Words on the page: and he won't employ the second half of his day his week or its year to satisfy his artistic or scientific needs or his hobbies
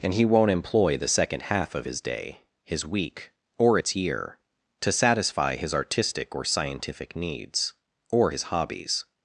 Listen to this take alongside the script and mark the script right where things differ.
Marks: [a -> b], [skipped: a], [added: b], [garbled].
and he won't employ the second half of his day his week or its year to satisfy his artistic or scientific needs or his hobbies